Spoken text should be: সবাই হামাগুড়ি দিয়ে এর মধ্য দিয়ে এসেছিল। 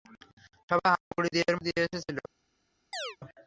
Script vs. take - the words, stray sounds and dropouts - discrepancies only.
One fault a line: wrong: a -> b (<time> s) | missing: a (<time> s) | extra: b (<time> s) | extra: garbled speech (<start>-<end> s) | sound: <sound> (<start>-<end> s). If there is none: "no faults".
sound: dropout (1.0-1.1 s)
missing: মধ্য (1.6 s)
sound: chirp (2.9-3.2 s)